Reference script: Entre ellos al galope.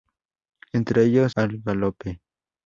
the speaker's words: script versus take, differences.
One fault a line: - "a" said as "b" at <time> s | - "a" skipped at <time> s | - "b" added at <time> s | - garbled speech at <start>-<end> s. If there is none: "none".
none